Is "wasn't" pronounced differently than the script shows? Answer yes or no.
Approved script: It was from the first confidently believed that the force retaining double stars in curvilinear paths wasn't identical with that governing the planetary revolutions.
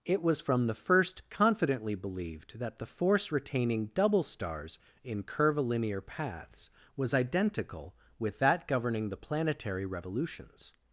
yes